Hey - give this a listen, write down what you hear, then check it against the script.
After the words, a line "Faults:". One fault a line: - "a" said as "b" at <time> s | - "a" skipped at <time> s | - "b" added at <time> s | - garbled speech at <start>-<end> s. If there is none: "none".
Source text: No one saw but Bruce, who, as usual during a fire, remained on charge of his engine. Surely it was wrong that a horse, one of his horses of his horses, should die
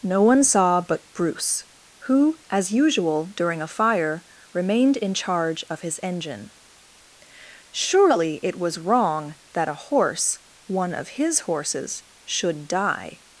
No one saw but Bruce, who, as usual during a fire, remained in charge of his engine. Surely it was wrong that a horse, one of his horses, should die
Faults:
- "on" said as "in" at 5.0 s
- "of his horses" skipped at 12.0 s